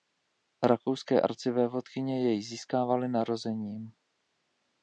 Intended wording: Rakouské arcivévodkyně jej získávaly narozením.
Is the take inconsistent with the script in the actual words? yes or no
no